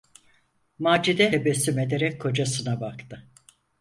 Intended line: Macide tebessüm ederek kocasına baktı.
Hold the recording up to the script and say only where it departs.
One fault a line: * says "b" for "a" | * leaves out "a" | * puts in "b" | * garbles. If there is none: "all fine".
all fine